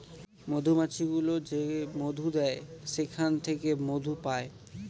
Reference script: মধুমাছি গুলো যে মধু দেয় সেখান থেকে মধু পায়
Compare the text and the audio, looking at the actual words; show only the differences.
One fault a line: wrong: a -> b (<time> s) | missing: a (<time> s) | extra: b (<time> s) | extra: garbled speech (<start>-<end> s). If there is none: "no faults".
no faults